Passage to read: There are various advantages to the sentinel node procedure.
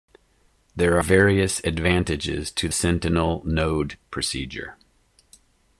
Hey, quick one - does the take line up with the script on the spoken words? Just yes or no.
no